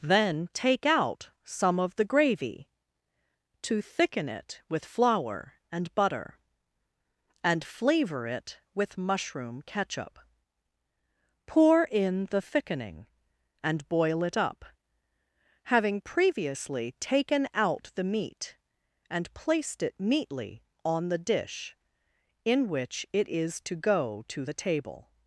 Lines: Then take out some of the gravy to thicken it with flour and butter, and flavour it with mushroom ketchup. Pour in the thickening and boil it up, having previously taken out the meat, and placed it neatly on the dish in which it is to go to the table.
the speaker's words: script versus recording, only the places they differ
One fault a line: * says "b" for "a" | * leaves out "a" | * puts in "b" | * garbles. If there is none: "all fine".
all fine